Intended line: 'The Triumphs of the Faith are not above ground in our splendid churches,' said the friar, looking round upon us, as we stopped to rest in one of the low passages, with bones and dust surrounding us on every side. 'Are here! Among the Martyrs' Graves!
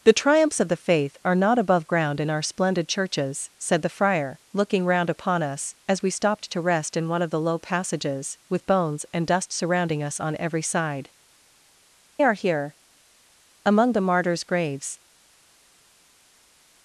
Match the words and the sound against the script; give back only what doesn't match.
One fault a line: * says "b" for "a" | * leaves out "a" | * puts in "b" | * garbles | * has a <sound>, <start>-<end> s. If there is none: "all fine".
all fine